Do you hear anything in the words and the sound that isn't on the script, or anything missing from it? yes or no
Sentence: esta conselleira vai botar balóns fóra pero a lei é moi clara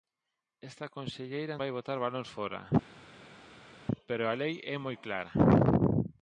no